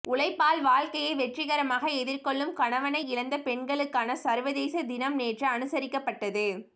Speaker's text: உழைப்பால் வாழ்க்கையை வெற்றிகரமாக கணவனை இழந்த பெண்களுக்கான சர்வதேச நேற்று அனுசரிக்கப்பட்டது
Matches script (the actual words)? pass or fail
fail